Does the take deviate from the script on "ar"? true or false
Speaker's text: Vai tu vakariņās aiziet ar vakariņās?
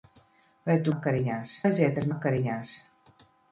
false